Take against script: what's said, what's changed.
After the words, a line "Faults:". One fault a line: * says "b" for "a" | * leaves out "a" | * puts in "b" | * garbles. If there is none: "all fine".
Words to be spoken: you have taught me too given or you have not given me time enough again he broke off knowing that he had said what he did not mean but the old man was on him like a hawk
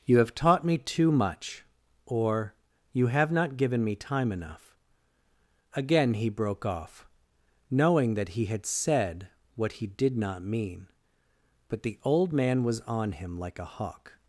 you have taught me too much or you have not given me time enough again he broke off knowing that he had said what he did not mean but the old man was on him like a hawk
Faults:
* says "much" for "given"